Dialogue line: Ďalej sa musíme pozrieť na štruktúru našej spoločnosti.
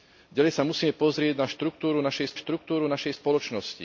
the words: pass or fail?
fail